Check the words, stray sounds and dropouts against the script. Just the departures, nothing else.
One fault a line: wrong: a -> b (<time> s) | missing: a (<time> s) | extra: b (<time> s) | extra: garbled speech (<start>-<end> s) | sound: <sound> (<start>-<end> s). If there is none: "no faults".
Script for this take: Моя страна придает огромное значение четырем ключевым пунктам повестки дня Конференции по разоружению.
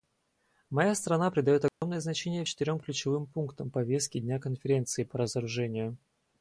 sound: dropout (1.7-1.8 s)